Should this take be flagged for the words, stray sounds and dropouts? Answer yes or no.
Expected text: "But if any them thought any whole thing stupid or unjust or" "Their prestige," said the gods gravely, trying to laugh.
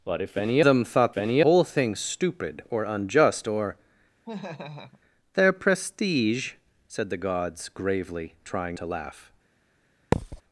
yes